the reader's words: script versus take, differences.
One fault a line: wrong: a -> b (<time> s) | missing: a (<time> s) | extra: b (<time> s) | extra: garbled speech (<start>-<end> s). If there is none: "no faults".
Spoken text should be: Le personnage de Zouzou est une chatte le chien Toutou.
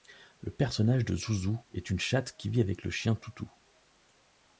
extra: qui vit avec (2.4 s)